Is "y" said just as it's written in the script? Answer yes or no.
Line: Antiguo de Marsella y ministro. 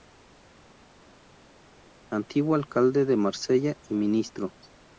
yes